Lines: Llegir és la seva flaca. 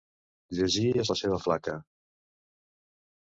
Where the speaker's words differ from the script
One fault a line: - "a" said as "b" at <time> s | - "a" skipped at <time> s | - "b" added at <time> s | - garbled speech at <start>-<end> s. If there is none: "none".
none